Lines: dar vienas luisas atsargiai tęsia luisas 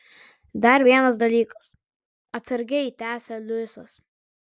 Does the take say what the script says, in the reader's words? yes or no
no